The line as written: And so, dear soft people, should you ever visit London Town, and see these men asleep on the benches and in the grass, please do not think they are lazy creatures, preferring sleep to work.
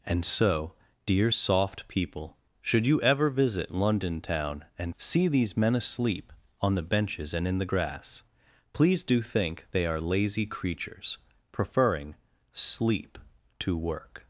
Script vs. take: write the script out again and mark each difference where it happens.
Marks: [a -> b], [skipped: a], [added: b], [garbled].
And so, dear soft people, should you ever visit London Town, and see these men asleep on the benches and in the grass, please do [skipped: not] think they are lazy creatures, preferring sleep to work.